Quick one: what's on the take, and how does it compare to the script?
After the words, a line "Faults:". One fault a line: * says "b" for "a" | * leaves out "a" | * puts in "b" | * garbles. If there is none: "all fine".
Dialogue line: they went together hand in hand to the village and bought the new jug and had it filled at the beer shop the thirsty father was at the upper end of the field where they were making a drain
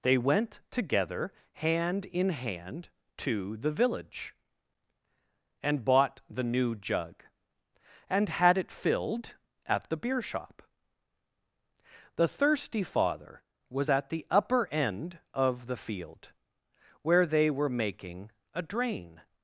they went together hand in hand to the village and bought the new jug and had it filled at the beer shop the thirsty father was at the upper end of the field where they were making a drain
Faults:
all fine